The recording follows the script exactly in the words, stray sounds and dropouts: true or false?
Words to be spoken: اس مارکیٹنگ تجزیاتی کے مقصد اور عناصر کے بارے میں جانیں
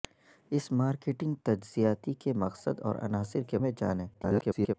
false